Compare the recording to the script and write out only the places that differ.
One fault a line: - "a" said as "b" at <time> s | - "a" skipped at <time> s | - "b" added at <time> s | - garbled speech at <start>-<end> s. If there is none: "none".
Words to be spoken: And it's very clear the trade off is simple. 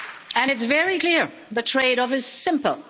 none